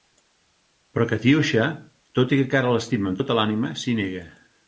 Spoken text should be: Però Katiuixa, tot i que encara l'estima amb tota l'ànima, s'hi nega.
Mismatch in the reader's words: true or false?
false